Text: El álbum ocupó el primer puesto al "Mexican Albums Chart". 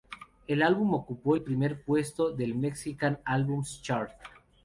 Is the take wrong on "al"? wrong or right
wrong